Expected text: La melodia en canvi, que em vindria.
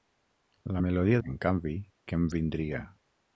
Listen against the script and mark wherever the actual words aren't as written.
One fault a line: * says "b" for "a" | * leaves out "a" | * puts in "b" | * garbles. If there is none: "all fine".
all fine